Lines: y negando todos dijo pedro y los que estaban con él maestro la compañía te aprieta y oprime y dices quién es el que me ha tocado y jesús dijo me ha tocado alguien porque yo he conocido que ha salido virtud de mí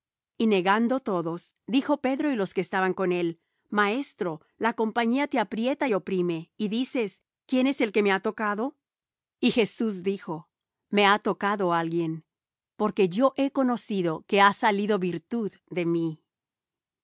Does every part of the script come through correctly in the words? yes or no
yes